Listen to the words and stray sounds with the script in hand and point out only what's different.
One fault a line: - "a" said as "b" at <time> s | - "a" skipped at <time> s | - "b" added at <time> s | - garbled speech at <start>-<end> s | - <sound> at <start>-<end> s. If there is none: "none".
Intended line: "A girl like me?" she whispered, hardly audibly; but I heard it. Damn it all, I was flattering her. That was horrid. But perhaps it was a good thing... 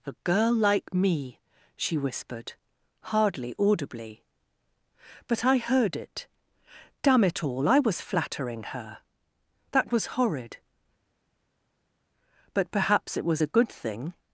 none